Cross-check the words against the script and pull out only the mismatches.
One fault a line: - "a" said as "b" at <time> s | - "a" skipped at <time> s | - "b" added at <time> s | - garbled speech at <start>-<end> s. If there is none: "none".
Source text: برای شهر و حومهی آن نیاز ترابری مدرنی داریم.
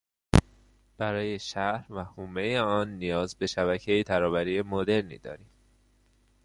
- "به شبکهی" added at 3.4 s